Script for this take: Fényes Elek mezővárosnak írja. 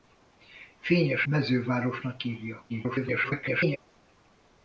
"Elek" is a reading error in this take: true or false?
true